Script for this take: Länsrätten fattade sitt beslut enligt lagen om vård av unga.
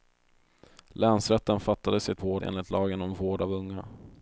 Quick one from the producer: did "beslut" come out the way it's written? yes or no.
no